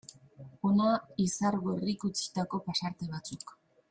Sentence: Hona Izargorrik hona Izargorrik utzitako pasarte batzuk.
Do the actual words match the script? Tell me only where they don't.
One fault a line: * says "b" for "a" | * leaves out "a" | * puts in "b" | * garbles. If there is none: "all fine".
* leaves out "hona Izargorrik"